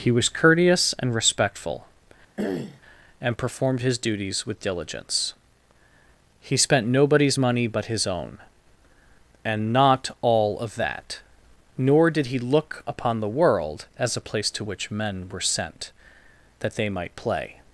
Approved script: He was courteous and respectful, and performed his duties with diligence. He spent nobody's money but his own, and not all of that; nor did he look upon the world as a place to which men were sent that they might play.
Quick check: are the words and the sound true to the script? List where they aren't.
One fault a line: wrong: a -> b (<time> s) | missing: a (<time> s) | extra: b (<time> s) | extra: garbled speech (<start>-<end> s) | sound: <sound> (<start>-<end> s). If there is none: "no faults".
sound: throat clearing (2.4-2.8 s)